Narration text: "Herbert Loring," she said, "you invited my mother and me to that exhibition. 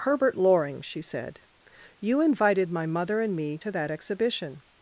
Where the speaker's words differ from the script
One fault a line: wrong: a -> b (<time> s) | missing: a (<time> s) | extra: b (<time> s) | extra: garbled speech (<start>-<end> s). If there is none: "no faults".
no faults